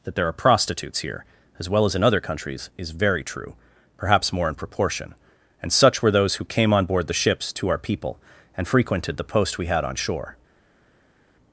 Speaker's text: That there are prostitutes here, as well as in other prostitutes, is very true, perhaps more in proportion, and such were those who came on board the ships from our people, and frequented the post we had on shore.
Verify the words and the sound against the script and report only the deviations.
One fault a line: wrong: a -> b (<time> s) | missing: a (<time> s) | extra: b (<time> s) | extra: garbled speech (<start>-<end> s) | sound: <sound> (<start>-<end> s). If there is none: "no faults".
wrong: prostitutes -> countries (2.2 s)
wrong: from -> to (7.5 s)